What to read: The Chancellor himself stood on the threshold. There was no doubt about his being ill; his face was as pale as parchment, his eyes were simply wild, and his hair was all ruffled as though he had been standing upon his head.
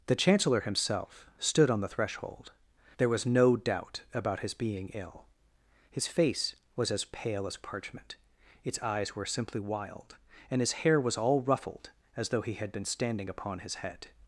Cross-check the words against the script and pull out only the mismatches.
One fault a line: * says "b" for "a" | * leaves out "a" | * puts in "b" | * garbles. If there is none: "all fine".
* says "its" for "his"